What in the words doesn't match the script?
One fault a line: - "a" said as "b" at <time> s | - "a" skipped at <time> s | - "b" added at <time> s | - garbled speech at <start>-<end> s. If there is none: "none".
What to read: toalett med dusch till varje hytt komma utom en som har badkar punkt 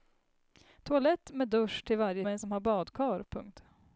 - "hytt komma utom" skipped at 2.2 s